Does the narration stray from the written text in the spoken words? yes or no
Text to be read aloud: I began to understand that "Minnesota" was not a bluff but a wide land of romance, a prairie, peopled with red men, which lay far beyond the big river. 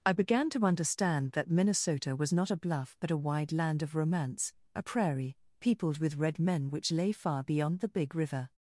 no